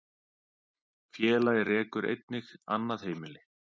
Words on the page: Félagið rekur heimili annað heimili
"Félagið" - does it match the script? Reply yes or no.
yes